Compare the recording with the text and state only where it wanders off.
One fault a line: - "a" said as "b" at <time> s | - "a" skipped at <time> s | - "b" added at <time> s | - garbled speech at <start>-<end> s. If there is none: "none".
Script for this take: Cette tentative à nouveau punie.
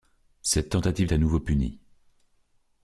none